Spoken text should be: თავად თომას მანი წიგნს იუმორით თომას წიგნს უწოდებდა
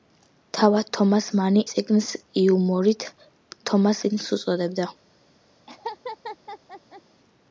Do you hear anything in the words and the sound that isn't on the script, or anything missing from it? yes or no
yes